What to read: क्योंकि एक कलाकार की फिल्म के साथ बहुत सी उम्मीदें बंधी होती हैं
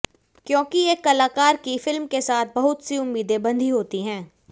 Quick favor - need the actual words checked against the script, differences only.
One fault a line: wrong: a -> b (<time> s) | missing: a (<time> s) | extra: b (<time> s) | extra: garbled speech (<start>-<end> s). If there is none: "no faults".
no faults